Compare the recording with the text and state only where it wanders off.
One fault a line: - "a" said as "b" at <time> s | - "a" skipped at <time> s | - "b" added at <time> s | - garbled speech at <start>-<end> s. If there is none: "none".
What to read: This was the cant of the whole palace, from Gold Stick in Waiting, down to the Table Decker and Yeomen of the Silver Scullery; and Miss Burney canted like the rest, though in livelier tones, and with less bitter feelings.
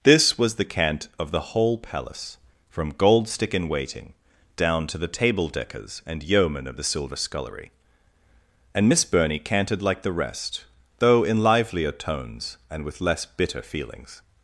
- "Decker" said as "Deckers" at 5.5 s